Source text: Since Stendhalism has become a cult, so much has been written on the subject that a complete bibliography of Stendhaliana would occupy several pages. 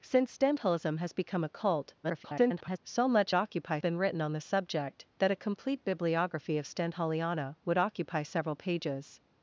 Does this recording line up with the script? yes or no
no